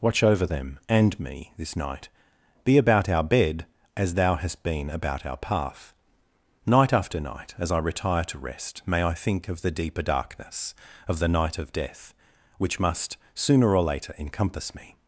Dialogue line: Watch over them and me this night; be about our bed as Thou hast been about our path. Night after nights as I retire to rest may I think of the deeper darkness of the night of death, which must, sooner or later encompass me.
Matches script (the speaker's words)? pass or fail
fail